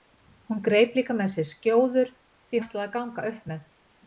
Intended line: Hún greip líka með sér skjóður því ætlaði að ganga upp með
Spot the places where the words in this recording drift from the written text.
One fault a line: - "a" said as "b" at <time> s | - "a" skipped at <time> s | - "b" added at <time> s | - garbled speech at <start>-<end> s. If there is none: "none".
none